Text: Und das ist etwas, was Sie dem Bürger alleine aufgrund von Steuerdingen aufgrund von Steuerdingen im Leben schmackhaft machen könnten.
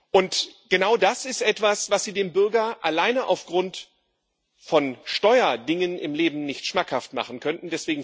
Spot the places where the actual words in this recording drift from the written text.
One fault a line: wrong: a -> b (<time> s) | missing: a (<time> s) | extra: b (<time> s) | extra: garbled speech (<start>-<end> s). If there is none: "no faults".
extra: genau (0.7 s)
missing: aufgrund von Steuerdingen (6.0 s)
extra: nicht (6.5 s)